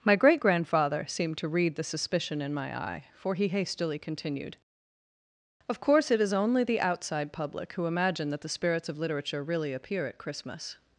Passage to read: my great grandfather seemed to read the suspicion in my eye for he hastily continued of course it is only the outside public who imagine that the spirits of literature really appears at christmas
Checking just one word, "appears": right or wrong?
wrong